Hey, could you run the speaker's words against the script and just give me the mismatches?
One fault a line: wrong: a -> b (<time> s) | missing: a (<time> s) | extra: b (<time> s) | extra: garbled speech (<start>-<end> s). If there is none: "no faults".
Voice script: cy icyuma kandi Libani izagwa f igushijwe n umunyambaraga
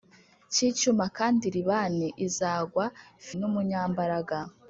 missing: igushijwe (3.3 s)